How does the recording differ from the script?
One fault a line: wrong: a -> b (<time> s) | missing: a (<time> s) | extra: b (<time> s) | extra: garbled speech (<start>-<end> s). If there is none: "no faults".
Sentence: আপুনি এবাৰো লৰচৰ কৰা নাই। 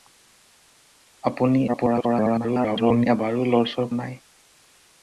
extra: garbled speech (1.7-3.1 s)
missing: কৰা (3.9 s)